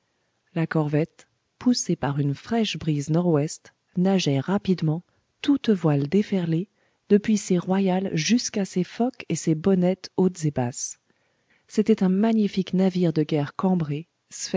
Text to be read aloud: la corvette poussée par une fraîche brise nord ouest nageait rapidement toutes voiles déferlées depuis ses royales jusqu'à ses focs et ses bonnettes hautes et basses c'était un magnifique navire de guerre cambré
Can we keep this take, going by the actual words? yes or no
yes